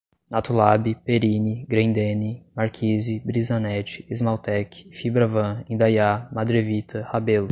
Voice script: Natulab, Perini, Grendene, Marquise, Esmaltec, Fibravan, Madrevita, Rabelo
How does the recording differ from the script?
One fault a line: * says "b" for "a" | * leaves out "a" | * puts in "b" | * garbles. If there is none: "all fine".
* puts in "Brisanet"
* puts in "Indaiá"